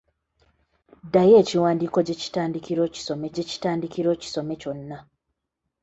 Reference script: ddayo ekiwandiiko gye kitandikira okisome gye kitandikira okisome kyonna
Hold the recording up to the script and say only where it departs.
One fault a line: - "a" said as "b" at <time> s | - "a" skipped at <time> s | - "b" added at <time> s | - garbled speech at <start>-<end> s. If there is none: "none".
none